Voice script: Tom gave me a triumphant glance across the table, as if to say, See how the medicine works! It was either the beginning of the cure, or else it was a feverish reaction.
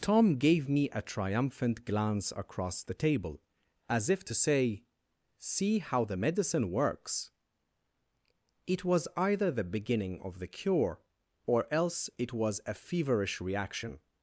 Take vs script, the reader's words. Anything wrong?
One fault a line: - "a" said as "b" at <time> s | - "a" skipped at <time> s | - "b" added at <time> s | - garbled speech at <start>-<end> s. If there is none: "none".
none